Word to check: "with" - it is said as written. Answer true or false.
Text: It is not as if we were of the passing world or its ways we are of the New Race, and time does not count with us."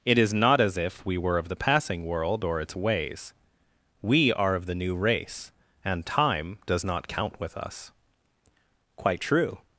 true